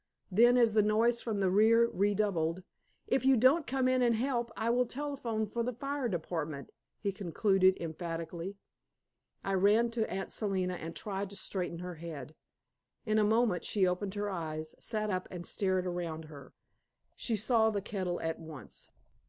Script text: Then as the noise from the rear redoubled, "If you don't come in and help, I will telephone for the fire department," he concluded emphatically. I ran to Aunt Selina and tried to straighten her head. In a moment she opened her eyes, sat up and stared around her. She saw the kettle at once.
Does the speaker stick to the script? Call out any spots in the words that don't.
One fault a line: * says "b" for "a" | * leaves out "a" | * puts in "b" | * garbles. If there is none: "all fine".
all fine